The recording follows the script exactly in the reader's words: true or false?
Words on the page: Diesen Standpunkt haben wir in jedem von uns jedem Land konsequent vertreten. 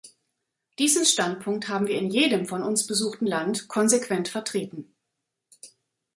false